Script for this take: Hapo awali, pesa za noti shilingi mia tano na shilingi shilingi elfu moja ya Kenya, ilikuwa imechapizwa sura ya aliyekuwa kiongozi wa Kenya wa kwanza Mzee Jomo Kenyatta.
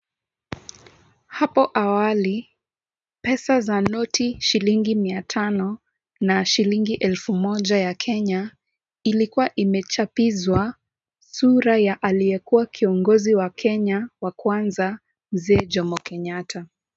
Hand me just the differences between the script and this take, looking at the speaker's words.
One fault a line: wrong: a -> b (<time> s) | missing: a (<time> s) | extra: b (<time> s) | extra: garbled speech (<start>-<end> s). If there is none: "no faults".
missing: shilingi (6.9 s)